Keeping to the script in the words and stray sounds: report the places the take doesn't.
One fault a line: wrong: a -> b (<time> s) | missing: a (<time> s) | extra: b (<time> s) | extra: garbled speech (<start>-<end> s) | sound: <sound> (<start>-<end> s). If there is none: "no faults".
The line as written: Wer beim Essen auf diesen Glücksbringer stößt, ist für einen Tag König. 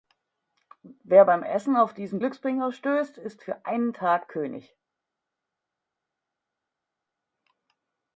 no faults